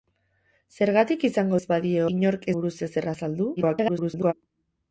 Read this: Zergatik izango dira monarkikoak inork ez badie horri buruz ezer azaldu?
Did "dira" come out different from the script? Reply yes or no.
yes